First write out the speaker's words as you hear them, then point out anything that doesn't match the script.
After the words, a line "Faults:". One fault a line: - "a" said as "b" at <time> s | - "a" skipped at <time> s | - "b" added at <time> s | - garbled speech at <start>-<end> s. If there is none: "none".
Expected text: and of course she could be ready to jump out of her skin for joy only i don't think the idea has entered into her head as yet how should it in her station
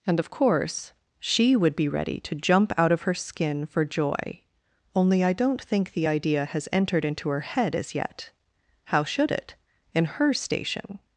and of course she would be ready to jump out of her skin for joy only i don't think the idea has entered into her head as yet how should it in her station
Faults:
- "could" said as "would" at 1.5 s